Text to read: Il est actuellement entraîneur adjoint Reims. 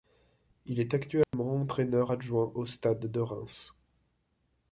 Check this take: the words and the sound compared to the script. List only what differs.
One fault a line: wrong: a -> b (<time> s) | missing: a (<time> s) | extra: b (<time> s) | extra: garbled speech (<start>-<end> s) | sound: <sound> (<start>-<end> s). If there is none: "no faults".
sound: dropout (1.2-1.3 s)
extra: au Stade de (2.5 s)